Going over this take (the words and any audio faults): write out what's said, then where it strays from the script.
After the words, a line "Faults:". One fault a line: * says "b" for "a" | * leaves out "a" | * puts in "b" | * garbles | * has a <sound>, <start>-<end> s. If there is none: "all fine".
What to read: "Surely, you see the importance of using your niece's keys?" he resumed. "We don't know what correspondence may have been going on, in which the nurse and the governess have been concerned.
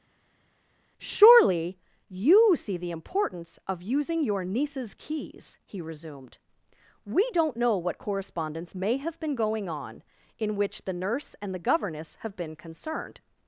"Surely, you see the importance of using your niece's keys?" he resumed. "We don't know what correspondence may have been going on, in which the nurse and the governess have been concerned.
Faults:
all fine